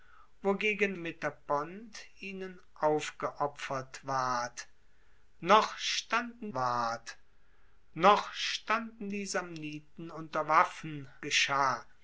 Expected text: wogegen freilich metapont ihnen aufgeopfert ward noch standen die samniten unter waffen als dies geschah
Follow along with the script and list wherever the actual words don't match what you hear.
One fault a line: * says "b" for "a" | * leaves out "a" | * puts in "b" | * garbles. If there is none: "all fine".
* leaves out "freilich"
* puts in "ward noch standen"
* leaves out "als dies"